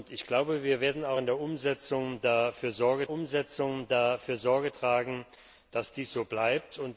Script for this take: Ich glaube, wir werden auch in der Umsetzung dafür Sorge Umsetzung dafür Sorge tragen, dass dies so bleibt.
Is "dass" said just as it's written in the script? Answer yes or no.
yes